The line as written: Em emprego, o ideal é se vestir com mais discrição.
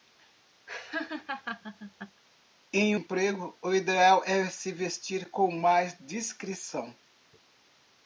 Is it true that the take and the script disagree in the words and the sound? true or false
true